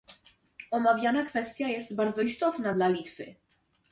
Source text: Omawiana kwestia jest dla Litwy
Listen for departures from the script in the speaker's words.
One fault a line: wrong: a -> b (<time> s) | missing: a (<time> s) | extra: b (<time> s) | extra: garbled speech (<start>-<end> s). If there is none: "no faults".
extra: bardzo istotna (1.9 s)